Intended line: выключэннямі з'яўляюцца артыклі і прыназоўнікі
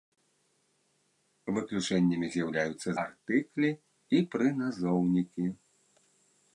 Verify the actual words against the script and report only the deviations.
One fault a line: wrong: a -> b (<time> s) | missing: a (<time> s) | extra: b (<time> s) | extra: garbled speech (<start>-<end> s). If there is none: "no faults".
no faults